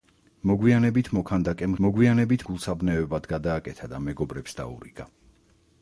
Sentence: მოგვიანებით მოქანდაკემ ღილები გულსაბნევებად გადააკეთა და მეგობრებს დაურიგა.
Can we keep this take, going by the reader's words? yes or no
no